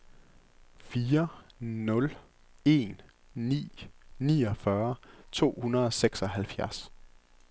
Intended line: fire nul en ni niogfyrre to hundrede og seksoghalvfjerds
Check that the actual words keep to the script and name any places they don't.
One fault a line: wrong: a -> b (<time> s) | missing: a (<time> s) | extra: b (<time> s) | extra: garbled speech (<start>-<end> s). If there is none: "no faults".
no faults